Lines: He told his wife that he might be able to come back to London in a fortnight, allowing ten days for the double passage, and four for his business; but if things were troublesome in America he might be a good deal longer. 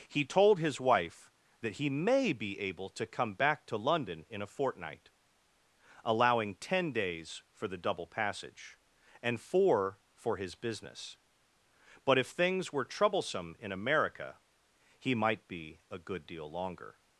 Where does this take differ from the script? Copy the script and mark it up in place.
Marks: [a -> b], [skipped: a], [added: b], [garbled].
He told his wife that he [might -> may] be able to come back to London in a fortnight, allowing ten days for the double passage, and four for his business; but if things were troublesome in America he might be a good deal longer.